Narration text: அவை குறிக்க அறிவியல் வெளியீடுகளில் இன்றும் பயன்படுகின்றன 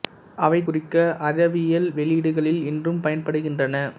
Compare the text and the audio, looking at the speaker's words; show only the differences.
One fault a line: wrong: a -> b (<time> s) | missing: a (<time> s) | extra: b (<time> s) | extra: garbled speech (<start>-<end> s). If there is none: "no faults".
no faults